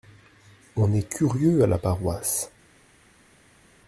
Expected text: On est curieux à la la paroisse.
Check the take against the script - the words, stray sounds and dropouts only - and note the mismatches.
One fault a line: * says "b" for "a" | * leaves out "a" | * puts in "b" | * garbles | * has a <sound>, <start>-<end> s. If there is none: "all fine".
* leaves out "la"